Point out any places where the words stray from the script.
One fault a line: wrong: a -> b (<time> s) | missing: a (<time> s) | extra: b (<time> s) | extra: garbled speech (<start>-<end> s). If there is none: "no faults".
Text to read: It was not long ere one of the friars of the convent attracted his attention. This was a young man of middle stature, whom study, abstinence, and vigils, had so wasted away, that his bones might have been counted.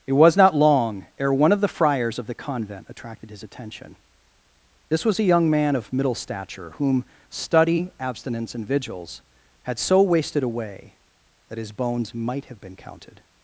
no faults